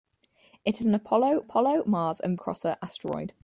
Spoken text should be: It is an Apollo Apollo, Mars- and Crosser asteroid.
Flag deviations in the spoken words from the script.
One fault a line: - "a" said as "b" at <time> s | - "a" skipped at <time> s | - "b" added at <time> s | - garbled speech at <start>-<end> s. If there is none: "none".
none